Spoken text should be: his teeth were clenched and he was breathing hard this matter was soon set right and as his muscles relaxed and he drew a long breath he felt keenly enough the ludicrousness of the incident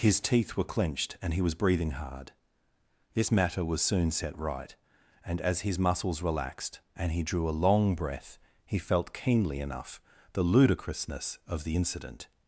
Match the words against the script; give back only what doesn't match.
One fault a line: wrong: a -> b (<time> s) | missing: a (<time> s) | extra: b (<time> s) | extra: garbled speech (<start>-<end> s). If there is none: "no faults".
no faults